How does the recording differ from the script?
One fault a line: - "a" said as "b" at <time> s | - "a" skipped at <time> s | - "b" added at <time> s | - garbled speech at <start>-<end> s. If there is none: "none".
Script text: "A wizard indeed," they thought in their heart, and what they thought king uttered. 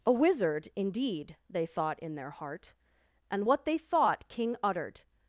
none